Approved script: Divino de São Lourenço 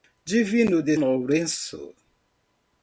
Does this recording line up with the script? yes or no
no